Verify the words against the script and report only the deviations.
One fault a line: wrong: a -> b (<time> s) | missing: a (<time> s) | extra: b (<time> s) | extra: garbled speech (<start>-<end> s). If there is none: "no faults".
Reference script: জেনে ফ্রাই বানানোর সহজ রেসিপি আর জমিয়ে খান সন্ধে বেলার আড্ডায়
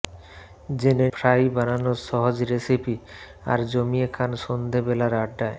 no faults